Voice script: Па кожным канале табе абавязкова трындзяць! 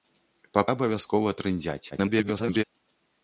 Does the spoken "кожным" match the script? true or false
false